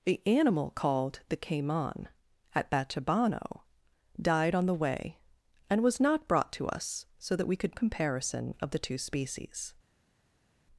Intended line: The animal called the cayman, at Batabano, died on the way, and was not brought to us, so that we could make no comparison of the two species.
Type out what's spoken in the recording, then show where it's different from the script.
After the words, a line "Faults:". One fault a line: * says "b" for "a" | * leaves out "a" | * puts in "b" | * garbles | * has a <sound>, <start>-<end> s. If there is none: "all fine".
The animal called the cayman, at Batabano, died on the way, and was not brought to us, so that we could comparison of the two species.
Faults:
* leaves out "make no"